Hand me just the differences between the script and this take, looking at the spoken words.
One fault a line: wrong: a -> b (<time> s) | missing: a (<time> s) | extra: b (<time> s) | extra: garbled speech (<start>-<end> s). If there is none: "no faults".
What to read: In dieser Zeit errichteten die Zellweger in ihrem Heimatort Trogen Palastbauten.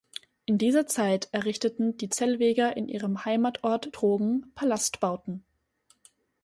no faults